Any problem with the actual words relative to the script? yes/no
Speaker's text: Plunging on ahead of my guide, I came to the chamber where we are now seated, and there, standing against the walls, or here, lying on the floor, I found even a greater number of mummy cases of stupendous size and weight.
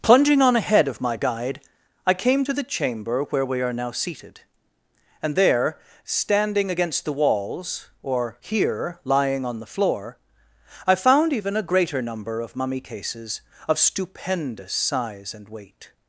no